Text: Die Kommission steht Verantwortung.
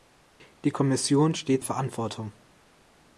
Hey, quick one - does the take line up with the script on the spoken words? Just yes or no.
yes